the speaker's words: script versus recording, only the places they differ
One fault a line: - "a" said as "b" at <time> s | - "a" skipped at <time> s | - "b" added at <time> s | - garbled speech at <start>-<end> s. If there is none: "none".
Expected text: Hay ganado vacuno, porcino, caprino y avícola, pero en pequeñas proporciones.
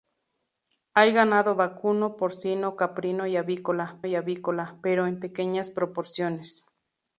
- "y avícola" added at 4.1 s